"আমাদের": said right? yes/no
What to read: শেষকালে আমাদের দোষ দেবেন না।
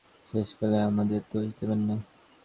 yes